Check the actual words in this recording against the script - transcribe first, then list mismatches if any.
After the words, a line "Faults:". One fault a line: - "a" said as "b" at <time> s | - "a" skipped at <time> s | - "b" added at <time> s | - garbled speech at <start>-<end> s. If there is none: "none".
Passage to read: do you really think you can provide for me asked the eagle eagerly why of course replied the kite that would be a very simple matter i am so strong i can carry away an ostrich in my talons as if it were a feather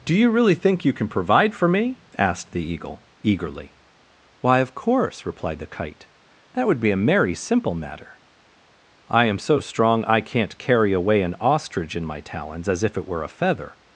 do you really think you can provide for me asked the eagle eagerly why of course replied the kite that would be a merry simple matter i am so strong i can't carry away an ostrich in my talons as if it were a feather
Faults:
- "very" said as "merry" at 7.0 s
- "can" said as "can't" at 10.2 s